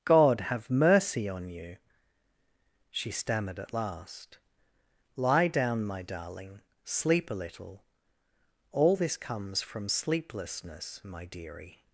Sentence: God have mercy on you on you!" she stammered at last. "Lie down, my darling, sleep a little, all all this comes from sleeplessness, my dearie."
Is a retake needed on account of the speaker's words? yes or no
yes